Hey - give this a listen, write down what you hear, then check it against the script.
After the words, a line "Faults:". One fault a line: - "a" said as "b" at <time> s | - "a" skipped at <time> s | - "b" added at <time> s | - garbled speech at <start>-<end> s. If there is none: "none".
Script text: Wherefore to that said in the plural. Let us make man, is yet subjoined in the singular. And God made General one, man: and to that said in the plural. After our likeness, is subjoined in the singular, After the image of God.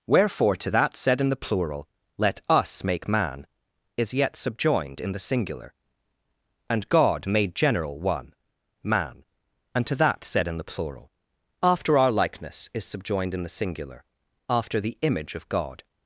Wherefore to that said in the plural. Let us make man, is yet subjoined in the singular. And God made General one, man: and to that said in the plural. After our likeness, is subjoined in the singular, After the image of God.
Faults:
none